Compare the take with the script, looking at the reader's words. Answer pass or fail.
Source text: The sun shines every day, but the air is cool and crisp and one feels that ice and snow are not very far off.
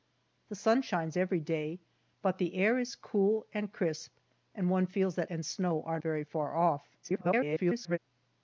fail